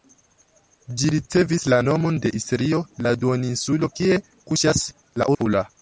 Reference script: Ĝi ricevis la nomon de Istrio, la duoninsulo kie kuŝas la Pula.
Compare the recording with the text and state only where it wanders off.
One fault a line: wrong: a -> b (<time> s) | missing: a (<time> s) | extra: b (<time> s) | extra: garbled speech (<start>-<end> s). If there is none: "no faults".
no faults